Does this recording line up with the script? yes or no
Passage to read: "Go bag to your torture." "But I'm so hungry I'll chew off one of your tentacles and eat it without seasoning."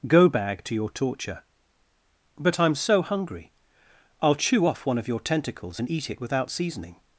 yes